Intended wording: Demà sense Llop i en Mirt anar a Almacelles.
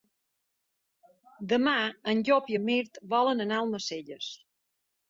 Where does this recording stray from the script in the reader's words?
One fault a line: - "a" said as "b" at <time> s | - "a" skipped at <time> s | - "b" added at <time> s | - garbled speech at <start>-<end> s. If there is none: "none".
- "sense" said as "en" at 2.1 s
- "volen" added at 3.2 s